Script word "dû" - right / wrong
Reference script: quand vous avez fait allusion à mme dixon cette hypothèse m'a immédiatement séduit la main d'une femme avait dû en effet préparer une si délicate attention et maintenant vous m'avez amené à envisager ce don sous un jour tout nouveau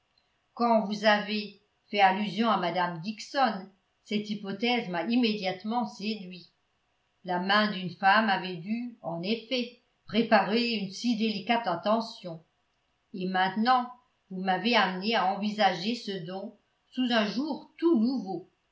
right